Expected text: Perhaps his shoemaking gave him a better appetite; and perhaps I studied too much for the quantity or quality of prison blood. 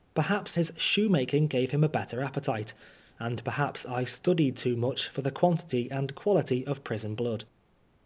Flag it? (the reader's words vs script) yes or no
yes